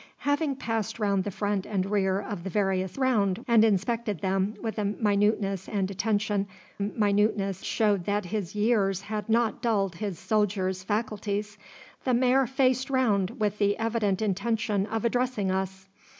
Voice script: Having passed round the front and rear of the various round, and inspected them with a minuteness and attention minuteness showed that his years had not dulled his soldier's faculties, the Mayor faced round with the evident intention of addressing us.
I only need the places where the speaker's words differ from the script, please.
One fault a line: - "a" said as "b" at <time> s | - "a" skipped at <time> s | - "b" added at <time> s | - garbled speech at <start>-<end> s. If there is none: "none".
none